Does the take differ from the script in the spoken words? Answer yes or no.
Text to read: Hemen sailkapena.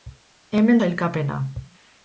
no